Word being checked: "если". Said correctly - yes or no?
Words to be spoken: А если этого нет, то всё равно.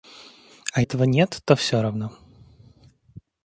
no